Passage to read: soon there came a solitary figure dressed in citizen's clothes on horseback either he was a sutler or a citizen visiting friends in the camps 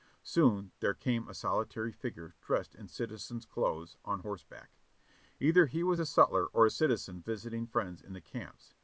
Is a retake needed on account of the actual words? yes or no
no